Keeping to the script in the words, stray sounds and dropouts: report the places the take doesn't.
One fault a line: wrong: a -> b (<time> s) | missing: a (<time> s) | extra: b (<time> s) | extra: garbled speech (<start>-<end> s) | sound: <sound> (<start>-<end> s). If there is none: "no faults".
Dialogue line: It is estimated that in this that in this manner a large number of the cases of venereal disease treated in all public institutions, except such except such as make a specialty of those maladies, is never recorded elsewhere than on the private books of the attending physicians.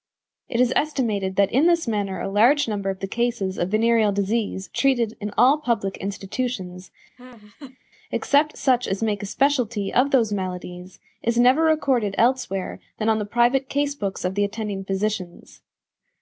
missing: that in this (1.9 s)
sound: laugh (7.2-7.8 s)
missing: except such (8.9 s)
extra: case (13.7 s)